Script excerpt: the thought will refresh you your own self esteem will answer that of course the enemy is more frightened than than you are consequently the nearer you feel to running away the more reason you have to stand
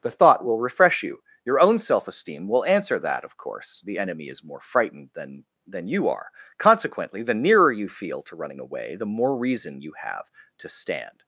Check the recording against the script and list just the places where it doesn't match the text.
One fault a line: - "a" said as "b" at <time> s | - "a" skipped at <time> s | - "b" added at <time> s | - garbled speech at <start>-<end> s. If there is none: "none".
none